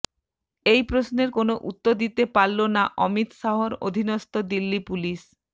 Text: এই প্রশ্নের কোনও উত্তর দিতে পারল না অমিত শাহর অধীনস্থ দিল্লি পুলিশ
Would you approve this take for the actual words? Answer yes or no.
yes